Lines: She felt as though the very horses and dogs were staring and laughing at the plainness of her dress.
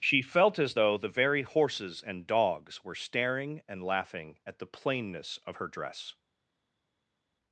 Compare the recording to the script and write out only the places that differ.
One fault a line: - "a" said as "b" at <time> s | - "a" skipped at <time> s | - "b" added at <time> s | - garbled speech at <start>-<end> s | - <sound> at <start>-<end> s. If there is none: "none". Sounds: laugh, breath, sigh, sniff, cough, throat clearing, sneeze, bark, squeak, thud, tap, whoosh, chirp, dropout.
none